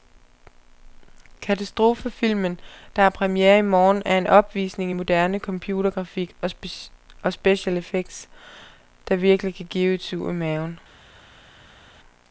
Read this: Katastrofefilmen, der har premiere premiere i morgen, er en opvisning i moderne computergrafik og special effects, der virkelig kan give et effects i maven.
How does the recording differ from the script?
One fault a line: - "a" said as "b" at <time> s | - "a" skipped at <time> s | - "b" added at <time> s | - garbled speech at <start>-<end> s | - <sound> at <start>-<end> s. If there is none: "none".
- "premiere" skipped at 3.6 s
- "effects" said as "sug" at 10.0 s